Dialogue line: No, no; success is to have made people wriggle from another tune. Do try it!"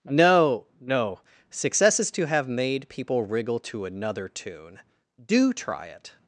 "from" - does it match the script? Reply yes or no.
no